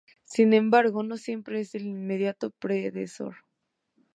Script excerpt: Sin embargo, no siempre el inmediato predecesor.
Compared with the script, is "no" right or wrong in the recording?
right